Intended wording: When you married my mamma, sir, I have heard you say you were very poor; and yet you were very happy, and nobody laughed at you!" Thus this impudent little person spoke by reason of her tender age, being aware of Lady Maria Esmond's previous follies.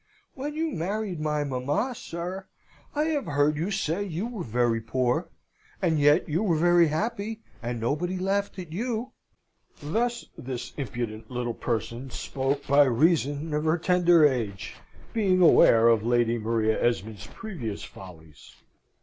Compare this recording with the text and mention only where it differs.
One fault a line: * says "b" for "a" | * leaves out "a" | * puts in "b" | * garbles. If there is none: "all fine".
all fine